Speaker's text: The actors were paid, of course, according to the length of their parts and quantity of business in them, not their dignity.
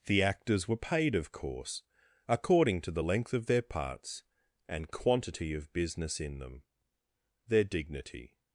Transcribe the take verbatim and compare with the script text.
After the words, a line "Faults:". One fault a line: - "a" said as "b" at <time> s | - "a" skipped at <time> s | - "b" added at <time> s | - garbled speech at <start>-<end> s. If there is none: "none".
The actors were paid, of course, according to the length of their parts and quantity of business in them, their dignity.
Faults:
- "not" skipped at 6.6 s